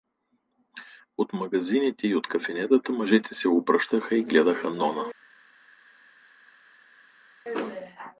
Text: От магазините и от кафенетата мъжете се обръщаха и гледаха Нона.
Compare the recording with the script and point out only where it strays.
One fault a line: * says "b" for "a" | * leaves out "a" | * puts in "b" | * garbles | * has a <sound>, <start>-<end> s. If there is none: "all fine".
all fine